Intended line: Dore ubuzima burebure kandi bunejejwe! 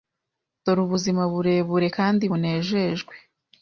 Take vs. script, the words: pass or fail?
pass